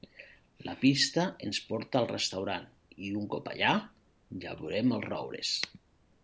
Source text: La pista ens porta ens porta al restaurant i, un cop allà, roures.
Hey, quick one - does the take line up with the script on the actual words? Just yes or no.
no